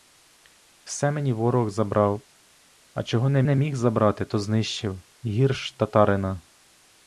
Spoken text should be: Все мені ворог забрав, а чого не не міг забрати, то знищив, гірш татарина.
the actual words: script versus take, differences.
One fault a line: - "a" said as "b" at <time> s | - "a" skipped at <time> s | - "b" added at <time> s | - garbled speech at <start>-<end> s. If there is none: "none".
none